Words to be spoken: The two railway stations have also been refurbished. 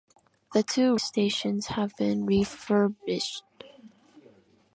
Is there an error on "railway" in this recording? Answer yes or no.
yes